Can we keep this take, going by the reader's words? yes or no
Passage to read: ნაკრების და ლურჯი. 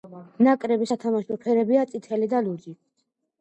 no